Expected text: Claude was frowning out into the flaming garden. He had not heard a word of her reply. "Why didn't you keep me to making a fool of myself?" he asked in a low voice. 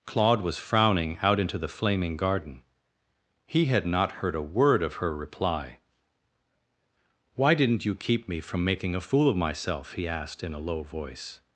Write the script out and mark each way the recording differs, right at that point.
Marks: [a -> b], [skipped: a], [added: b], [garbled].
Claude was frowning out into the flaming garden. He had not heard a word of her reply. "Why didn't you keep me [to -> from] making a fool of myself?" he asked in a low voice.